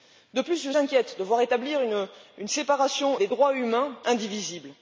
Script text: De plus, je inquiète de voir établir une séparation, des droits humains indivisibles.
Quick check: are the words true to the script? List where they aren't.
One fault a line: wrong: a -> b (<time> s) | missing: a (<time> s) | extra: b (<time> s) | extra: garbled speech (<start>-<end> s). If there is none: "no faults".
no faults